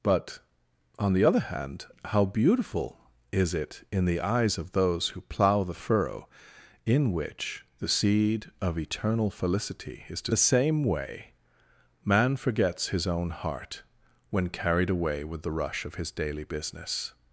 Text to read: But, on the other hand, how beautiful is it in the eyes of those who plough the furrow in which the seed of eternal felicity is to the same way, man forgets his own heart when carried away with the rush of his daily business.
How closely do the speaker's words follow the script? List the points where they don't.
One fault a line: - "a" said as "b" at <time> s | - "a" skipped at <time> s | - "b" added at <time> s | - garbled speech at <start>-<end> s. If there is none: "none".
none